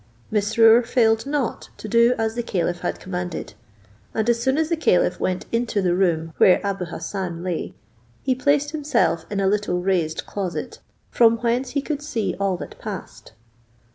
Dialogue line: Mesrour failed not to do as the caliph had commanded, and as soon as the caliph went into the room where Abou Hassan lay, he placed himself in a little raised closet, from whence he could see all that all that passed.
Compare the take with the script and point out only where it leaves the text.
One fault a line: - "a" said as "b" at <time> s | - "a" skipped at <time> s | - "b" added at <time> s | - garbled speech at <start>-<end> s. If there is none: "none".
- "all that" skipped at 12.8 s